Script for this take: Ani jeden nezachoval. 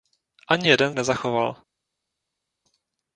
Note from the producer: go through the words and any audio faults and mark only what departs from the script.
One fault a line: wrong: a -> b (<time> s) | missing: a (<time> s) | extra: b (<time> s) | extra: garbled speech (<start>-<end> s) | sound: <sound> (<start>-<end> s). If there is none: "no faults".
no faults